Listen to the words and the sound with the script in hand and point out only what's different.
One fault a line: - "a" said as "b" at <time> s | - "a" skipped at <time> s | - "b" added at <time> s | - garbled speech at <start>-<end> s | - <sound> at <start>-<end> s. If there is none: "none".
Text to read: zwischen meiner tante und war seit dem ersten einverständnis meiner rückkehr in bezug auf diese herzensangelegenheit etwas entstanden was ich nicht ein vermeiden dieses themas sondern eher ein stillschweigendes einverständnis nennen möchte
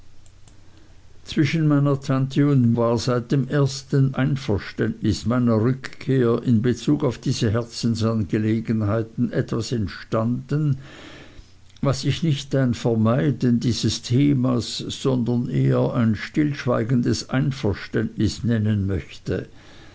none